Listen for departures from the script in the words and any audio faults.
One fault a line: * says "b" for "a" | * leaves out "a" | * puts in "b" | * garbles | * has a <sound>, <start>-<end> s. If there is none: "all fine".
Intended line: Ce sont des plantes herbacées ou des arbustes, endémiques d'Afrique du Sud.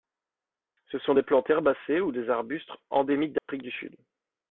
* has a dropout, 3.4-3.5 s